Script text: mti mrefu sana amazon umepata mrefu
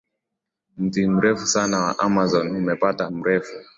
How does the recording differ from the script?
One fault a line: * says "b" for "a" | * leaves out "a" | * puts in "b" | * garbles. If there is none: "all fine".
* puts in "wa"